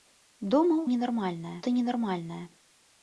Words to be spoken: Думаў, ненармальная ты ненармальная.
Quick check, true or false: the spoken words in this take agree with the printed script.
true